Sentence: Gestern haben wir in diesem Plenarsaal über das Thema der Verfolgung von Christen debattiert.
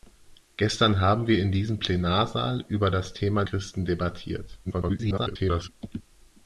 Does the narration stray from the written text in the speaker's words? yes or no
yes